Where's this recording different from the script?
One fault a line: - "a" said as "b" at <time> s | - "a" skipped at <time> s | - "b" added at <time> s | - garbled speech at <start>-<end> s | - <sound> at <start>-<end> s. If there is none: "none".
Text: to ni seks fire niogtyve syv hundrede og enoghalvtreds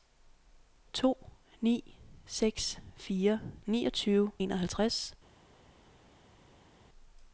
- "syv hundrede og" skipped at 4.3 s